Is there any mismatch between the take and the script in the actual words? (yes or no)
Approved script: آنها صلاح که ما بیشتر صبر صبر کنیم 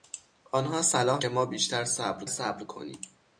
no